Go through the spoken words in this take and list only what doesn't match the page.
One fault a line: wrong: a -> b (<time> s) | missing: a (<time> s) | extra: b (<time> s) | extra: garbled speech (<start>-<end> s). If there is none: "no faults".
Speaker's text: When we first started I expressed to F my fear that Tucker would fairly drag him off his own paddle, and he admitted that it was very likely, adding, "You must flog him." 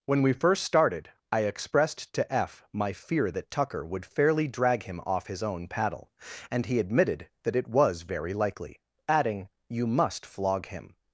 no faults